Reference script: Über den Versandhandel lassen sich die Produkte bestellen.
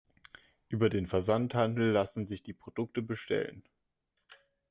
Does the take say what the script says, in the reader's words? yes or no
yes